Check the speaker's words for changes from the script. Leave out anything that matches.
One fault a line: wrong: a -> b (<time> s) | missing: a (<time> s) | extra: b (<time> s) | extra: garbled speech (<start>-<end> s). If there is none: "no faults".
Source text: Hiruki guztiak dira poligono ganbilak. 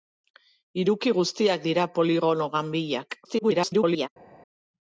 extra: garbled speech (3.2-4.1 s)